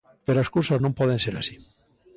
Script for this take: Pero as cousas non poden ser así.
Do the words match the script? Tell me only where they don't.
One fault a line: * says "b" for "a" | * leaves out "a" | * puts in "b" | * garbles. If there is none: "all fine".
all fine